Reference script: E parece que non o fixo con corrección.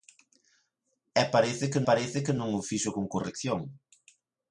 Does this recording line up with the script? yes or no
no